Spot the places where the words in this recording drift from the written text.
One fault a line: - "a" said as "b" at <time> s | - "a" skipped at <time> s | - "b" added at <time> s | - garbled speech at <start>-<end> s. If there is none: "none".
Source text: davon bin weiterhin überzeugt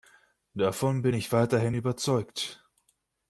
- "ich" added at 1.1 s